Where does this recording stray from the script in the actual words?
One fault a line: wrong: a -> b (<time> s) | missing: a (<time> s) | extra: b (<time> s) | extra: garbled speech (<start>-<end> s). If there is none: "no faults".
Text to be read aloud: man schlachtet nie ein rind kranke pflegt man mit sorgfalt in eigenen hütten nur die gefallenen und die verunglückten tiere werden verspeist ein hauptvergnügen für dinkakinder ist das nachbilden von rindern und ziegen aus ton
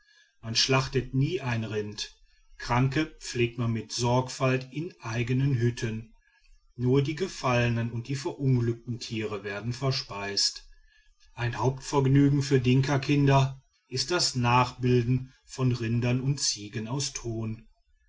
no faults